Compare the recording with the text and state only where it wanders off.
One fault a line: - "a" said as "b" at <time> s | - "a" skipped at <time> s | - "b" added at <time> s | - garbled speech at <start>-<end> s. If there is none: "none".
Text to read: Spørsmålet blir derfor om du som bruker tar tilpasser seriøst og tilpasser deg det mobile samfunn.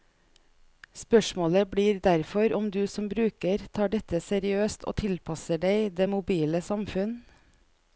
- "tilpasser" said as "dette" at 4.0 s